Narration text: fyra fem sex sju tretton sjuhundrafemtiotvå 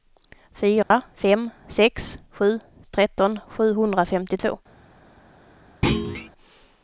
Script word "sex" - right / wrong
right